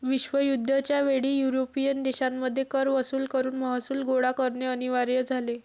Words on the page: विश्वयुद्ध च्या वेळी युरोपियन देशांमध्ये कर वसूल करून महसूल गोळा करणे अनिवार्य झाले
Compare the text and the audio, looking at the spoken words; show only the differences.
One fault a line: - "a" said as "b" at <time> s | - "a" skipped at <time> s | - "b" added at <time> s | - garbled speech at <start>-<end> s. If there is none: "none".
none